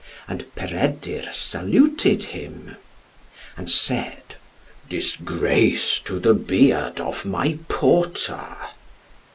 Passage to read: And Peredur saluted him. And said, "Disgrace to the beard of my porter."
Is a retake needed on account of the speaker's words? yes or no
no